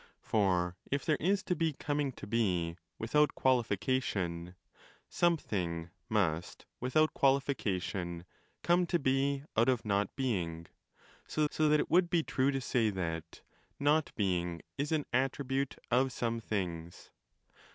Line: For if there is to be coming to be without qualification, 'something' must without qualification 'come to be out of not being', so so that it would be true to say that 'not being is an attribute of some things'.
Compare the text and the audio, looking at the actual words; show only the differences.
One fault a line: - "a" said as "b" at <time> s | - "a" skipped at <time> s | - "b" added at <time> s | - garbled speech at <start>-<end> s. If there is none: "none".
none